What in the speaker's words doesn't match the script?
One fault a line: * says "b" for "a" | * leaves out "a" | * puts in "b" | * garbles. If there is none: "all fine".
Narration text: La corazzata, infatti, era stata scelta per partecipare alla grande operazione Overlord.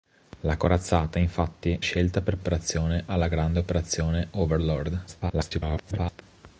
* leaves out "era stata"
* says "operazione" for "partecipare"
* garbles